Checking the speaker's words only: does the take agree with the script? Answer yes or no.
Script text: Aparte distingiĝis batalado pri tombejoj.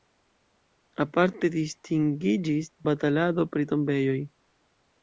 yes